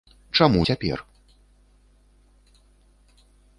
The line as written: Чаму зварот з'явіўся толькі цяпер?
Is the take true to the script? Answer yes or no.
no